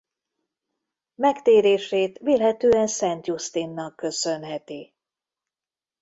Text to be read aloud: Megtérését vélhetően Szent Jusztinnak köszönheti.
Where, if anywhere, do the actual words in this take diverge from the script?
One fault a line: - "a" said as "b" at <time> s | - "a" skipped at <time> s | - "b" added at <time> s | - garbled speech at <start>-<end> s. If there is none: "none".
none